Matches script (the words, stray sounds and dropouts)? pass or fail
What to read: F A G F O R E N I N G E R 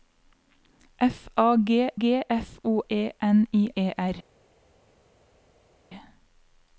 fail